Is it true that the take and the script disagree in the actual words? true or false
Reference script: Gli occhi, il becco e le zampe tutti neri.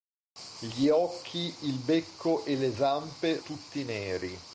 false